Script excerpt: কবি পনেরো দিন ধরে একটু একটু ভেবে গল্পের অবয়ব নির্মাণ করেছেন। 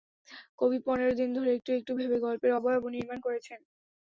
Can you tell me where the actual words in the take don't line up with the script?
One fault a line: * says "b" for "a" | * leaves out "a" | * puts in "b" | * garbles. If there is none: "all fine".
all fine